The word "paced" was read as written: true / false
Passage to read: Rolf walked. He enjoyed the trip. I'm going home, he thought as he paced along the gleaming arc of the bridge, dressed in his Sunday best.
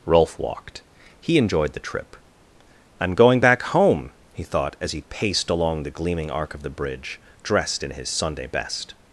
true